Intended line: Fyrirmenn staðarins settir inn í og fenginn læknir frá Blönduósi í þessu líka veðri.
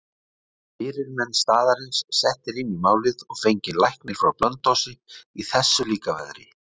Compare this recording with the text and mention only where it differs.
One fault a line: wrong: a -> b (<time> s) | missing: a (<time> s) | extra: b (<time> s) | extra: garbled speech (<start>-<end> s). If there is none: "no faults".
extra: málið (2.9 s)